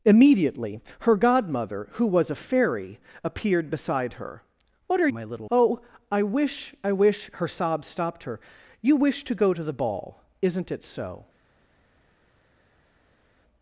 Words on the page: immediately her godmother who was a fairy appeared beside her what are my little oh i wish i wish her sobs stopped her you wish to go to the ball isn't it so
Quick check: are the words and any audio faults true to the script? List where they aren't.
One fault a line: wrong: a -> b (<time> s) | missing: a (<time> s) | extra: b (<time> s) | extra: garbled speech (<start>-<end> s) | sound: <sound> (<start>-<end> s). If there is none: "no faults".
no faults